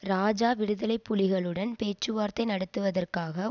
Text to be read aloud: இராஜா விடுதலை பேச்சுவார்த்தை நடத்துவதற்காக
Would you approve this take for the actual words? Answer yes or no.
no